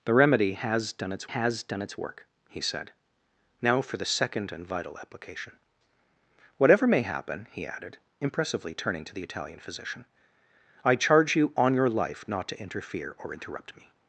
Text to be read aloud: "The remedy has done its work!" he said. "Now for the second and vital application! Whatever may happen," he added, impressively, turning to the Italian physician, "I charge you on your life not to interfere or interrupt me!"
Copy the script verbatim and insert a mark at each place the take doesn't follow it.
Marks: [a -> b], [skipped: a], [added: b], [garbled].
"The remedy has done its [added: has done its] work!" he said. "Now for the second and vital application! Whatever may happen," he added, impressively, turning to the Italian physician, "I charge you on your life not to interfere or interrupt me!"